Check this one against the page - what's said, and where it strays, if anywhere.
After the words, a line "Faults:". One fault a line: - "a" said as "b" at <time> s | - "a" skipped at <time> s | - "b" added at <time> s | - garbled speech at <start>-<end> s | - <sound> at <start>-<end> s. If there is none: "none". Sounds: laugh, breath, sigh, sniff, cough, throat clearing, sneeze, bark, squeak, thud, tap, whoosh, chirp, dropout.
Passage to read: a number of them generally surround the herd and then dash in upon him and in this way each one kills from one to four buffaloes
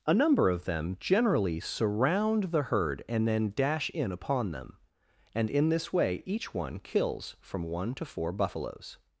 a number of them generally surround the herd and then dash in upon them and in this way each one kills from one to four buffaloes
Faults:
- "him" said as "them" at 4.5 s